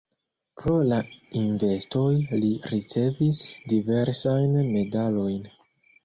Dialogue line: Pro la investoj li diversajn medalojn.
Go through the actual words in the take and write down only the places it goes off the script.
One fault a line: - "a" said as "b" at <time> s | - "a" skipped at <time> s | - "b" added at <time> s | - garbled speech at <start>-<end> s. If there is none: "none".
- "ricevis" added at 2.7 s